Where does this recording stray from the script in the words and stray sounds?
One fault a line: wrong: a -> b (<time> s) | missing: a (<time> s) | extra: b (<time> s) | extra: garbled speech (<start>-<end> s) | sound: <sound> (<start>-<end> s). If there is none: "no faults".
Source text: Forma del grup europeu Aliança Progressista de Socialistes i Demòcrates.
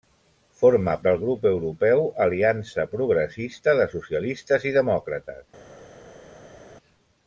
no faults